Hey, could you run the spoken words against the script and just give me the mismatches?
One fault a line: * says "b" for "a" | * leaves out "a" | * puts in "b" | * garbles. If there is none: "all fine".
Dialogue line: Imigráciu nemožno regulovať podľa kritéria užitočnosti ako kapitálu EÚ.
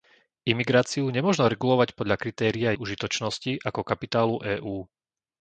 all fine